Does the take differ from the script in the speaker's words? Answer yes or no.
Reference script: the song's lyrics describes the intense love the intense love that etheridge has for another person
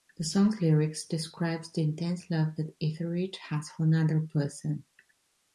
yes